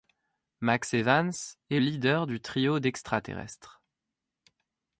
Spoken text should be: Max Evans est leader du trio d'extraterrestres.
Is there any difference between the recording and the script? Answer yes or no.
no